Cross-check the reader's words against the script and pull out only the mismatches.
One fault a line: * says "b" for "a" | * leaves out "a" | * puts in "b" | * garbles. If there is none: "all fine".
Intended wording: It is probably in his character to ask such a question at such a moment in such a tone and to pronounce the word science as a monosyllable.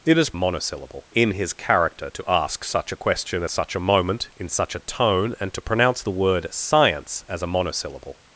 * says "monosyllable" for "probably"
* leaves out "at"